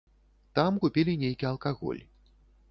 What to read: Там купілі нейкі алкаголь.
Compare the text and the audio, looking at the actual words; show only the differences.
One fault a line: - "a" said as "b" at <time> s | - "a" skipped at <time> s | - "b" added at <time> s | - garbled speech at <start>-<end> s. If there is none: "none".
none